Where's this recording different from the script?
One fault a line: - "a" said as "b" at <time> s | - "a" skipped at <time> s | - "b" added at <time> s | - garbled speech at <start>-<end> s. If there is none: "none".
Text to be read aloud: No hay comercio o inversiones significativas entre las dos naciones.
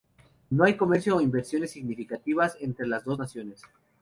none